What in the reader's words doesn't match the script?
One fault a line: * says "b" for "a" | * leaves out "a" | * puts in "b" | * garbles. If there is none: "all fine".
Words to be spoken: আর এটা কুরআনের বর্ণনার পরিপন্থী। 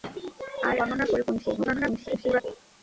* leaves out "এটা কুরআনের"
* garbles